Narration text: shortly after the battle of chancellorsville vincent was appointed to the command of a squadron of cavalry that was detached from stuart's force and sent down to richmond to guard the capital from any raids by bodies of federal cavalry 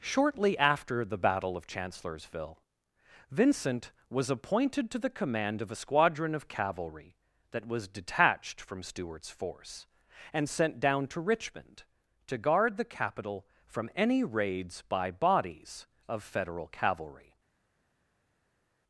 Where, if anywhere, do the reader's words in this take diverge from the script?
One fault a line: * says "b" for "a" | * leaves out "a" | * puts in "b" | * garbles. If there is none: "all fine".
all fine